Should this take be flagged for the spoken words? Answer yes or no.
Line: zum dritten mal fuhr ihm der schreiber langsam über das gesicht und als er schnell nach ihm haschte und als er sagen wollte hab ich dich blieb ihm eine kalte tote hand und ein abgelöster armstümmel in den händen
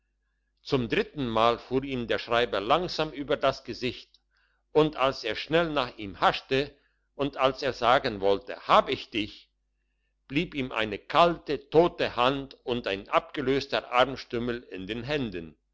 no